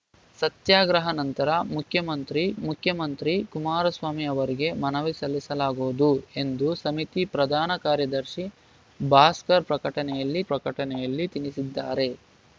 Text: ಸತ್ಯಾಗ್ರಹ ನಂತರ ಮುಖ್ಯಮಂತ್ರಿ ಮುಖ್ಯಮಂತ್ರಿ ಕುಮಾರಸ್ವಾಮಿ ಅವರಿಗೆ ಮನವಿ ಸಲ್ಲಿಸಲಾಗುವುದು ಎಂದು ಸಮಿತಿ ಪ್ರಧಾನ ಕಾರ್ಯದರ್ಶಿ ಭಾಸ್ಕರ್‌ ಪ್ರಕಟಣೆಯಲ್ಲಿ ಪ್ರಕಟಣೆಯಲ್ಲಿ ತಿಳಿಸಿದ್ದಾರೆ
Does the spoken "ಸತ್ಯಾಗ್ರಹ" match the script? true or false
true